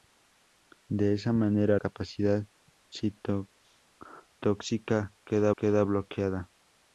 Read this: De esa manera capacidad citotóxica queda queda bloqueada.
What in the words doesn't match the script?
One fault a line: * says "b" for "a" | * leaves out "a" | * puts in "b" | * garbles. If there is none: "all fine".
all fine